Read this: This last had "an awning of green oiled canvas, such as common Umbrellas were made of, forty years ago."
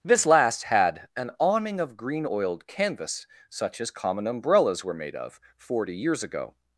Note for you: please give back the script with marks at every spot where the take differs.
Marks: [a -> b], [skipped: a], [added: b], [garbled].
This last had "an awning of green oiled canvas, such as common Umbrellas were made of, forty years ago."